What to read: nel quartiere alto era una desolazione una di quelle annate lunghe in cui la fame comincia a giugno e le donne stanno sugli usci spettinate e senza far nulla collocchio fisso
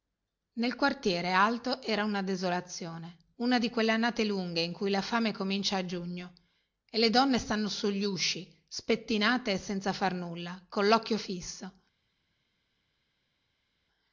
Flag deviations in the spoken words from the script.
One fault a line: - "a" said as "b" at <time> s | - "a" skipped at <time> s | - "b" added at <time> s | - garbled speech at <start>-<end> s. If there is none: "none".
none